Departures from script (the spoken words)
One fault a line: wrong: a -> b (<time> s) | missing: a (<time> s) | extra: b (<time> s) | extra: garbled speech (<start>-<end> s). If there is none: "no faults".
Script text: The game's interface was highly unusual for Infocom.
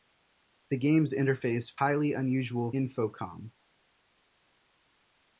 missing: was (1.8 s)
missing: for (2.7 s)